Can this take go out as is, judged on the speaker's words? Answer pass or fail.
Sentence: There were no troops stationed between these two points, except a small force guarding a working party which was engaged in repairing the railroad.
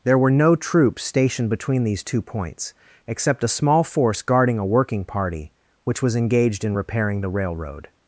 pass